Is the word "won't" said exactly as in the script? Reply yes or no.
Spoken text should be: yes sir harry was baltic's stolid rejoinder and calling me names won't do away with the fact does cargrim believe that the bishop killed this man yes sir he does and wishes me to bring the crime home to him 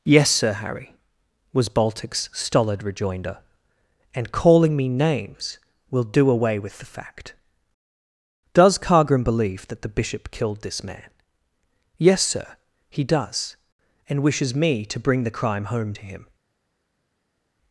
no